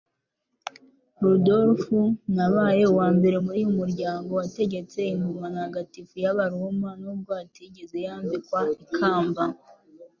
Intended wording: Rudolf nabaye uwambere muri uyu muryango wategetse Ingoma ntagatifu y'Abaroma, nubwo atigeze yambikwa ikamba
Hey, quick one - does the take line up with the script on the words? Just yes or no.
yes